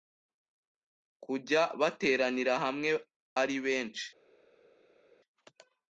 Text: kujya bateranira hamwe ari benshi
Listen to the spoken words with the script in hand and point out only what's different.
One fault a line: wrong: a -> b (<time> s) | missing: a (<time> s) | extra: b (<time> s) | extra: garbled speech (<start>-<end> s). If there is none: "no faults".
no faults